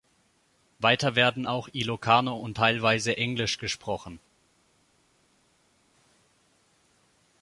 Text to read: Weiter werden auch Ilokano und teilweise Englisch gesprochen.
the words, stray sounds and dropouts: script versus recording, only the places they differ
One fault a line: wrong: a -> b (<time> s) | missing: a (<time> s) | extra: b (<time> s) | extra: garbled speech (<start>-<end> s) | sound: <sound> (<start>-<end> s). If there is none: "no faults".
no faults